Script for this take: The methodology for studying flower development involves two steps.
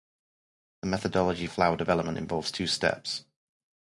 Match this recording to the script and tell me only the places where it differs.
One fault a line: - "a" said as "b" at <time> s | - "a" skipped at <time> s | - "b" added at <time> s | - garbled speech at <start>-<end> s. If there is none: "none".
- "for studying" skipped at 1.4 s